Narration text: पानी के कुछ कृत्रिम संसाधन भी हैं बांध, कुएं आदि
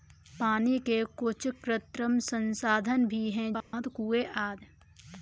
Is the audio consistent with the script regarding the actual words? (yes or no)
yes